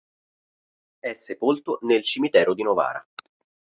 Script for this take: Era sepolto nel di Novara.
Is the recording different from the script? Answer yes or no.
yes